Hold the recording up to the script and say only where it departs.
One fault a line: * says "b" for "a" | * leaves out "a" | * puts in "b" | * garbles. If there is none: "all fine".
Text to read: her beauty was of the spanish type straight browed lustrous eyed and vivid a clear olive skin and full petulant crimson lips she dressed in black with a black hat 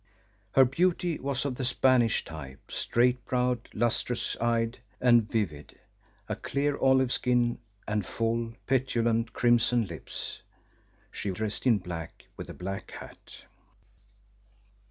all fine